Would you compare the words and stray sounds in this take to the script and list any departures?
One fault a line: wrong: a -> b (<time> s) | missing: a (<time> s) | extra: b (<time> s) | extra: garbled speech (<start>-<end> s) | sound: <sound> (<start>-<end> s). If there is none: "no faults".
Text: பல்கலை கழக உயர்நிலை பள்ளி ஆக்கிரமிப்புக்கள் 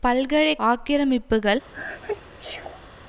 missing: கழக உயர்நிலை பள்ளி (0.6 s)
sound: sneeze (1.7-2.9 s)